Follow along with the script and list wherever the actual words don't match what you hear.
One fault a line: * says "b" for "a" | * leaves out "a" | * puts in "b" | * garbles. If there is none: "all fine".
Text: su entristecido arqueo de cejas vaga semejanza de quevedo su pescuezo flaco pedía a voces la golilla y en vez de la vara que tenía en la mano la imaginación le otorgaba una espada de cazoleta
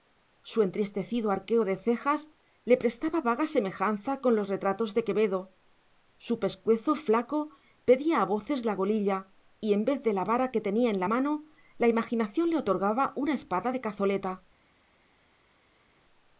* puts in "le prestaba"
* puts in "con los retratos"